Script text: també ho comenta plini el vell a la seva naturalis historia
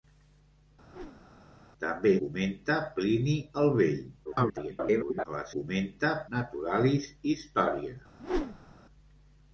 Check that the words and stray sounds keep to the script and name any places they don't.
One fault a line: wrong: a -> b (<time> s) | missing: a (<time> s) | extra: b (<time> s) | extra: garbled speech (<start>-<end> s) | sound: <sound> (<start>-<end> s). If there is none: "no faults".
sound: whoosh (0.9-1.4 s)
missing: ho (2.1 s)
extra: garbled speech (4.2-5.2 s)
wrong: seva -> comenta (5.6 s)
sound: whoosh (8.2-8.7 s)